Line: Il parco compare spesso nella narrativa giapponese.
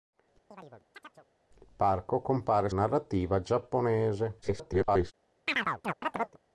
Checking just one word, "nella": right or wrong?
wrong